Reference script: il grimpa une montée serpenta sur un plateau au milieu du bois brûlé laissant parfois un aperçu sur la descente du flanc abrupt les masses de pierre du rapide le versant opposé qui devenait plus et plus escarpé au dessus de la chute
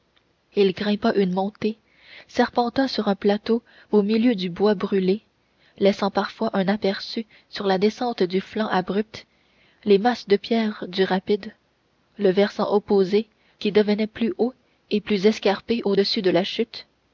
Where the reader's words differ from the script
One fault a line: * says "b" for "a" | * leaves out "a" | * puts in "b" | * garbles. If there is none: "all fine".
* puts in "haut"